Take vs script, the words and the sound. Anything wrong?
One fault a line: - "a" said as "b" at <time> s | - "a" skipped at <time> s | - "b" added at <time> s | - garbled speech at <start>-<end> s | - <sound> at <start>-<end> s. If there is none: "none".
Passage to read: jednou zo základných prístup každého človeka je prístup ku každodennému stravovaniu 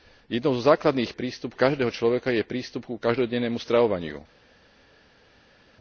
none